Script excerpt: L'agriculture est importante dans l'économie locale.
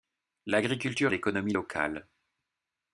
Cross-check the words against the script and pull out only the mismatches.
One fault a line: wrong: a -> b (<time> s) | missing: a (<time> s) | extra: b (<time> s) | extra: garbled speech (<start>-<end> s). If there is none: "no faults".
missing: est importante dans (1.1 s)